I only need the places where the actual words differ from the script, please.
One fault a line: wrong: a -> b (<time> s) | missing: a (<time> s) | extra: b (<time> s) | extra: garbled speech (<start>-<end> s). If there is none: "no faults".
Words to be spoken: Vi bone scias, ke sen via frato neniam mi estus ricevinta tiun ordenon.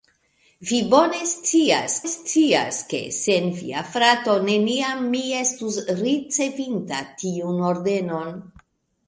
extra: scias (2.1 s)